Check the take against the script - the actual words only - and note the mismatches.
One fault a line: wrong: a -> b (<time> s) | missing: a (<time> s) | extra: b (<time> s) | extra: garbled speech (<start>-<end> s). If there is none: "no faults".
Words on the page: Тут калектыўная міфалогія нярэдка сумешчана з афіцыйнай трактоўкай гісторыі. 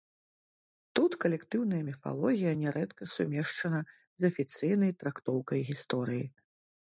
no faults